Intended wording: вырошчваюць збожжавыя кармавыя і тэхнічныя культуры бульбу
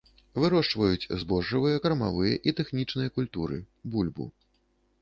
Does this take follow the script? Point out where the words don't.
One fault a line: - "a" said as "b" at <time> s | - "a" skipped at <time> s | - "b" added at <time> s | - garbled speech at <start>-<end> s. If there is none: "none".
none